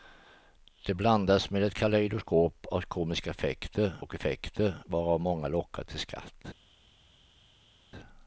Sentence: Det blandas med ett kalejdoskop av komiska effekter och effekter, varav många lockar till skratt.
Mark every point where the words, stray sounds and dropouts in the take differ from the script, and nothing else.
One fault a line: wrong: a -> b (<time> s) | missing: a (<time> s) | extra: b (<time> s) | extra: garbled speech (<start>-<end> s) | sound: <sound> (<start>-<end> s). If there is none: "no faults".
no faults